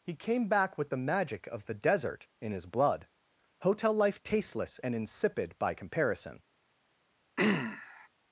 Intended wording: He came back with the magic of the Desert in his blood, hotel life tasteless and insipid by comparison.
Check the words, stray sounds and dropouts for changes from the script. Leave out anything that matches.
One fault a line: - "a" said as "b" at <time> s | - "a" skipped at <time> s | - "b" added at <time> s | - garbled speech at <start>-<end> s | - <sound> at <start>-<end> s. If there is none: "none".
- throat clearing at 7.4-8.1 s